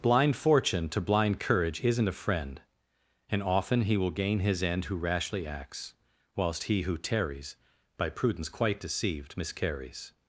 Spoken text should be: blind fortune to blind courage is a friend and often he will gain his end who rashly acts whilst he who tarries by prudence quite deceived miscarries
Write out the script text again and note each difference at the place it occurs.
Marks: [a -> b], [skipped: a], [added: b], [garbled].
blind fortune to blind courage [is -> isn't] a friend and often he will gain his end who rashly acts whilst he who tarries by prudence quite deceived miscarries